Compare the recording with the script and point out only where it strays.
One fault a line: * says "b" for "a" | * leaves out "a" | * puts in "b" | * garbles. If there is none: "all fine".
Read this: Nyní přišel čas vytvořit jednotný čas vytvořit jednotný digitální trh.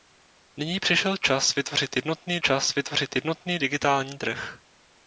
all fine